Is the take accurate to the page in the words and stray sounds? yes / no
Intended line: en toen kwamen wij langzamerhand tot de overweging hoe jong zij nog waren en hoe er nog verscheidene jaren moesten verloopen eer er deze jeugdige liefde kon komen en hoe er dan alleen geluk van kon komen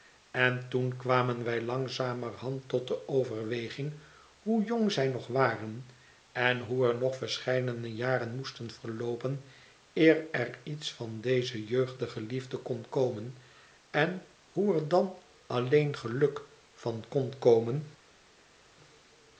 no